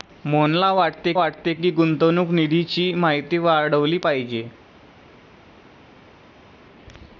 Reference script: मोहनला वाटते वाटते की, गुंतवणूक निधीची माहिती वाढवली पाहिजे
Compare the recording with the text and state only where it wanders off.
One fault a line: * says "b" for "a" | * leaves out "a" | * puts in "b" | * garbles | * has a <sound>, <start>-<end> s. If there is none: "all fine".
all fine